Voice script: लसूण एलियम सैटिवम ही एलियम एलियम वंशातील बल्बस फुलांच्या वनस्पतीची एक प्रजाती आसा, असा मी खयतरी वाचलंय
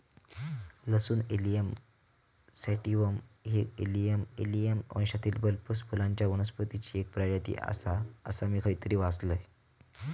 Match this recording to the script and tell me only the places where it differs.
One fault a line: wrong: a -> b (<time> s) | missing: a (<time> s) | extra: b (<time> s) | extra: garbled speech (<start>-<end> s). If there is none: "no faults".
no faults